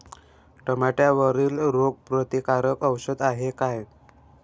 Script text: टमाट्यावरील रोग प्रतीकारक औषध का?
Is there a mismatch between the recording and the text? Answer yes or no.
yes